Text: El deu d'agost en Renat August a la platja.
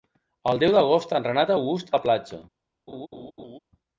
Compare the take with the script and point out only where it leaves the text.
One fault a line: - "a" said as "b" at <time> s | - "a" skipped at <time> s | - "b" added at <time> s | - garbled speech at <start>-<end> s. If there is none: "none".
none